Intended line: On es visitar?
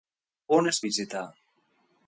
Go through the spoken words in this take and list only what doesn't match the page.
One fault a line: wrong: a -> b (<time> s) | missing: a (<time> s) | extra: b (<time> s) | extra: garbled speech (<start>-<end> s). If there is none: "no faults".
no faults